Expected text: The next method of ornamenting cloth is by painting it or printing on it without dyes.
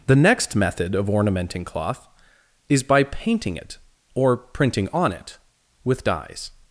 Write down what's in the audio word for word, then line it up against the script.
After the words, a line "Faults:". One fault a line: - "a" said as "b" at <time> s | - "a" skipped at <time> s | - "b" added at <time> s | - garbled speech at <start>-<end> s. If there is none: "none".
The next method of ornamenting cloth is by painting it or printing on it with dyes.
Faults:
- "without" said as "with" at 5.8 s